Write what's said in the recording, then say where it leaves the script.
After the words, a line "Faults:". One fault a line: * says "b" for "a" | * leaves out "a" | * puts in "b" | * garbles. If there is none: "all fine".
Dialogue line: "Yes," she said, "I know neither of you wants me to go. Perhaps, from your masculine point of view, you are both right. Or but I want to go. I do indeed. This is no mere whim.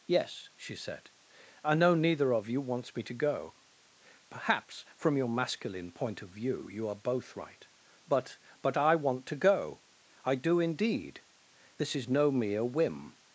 "Yes," she said, "I know neither of you wants me to go. Perhaps, from your masculine point of view, you are both right. But but I want to go. I do indeed. This is no mere whim.
Faults:
* says "But" for "Or"